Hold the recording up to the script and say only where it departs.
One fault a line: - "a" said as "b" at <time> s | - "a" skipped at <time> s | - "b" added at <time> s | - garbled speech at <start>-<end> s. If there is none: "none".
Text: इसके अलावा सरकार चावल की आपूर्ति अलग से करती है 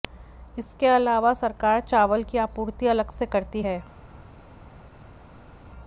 none